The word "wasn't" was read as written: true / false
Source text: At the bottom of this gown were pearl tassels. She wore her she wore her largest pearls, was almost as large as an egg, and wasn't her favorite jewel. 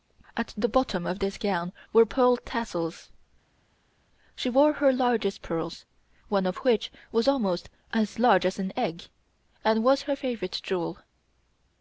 false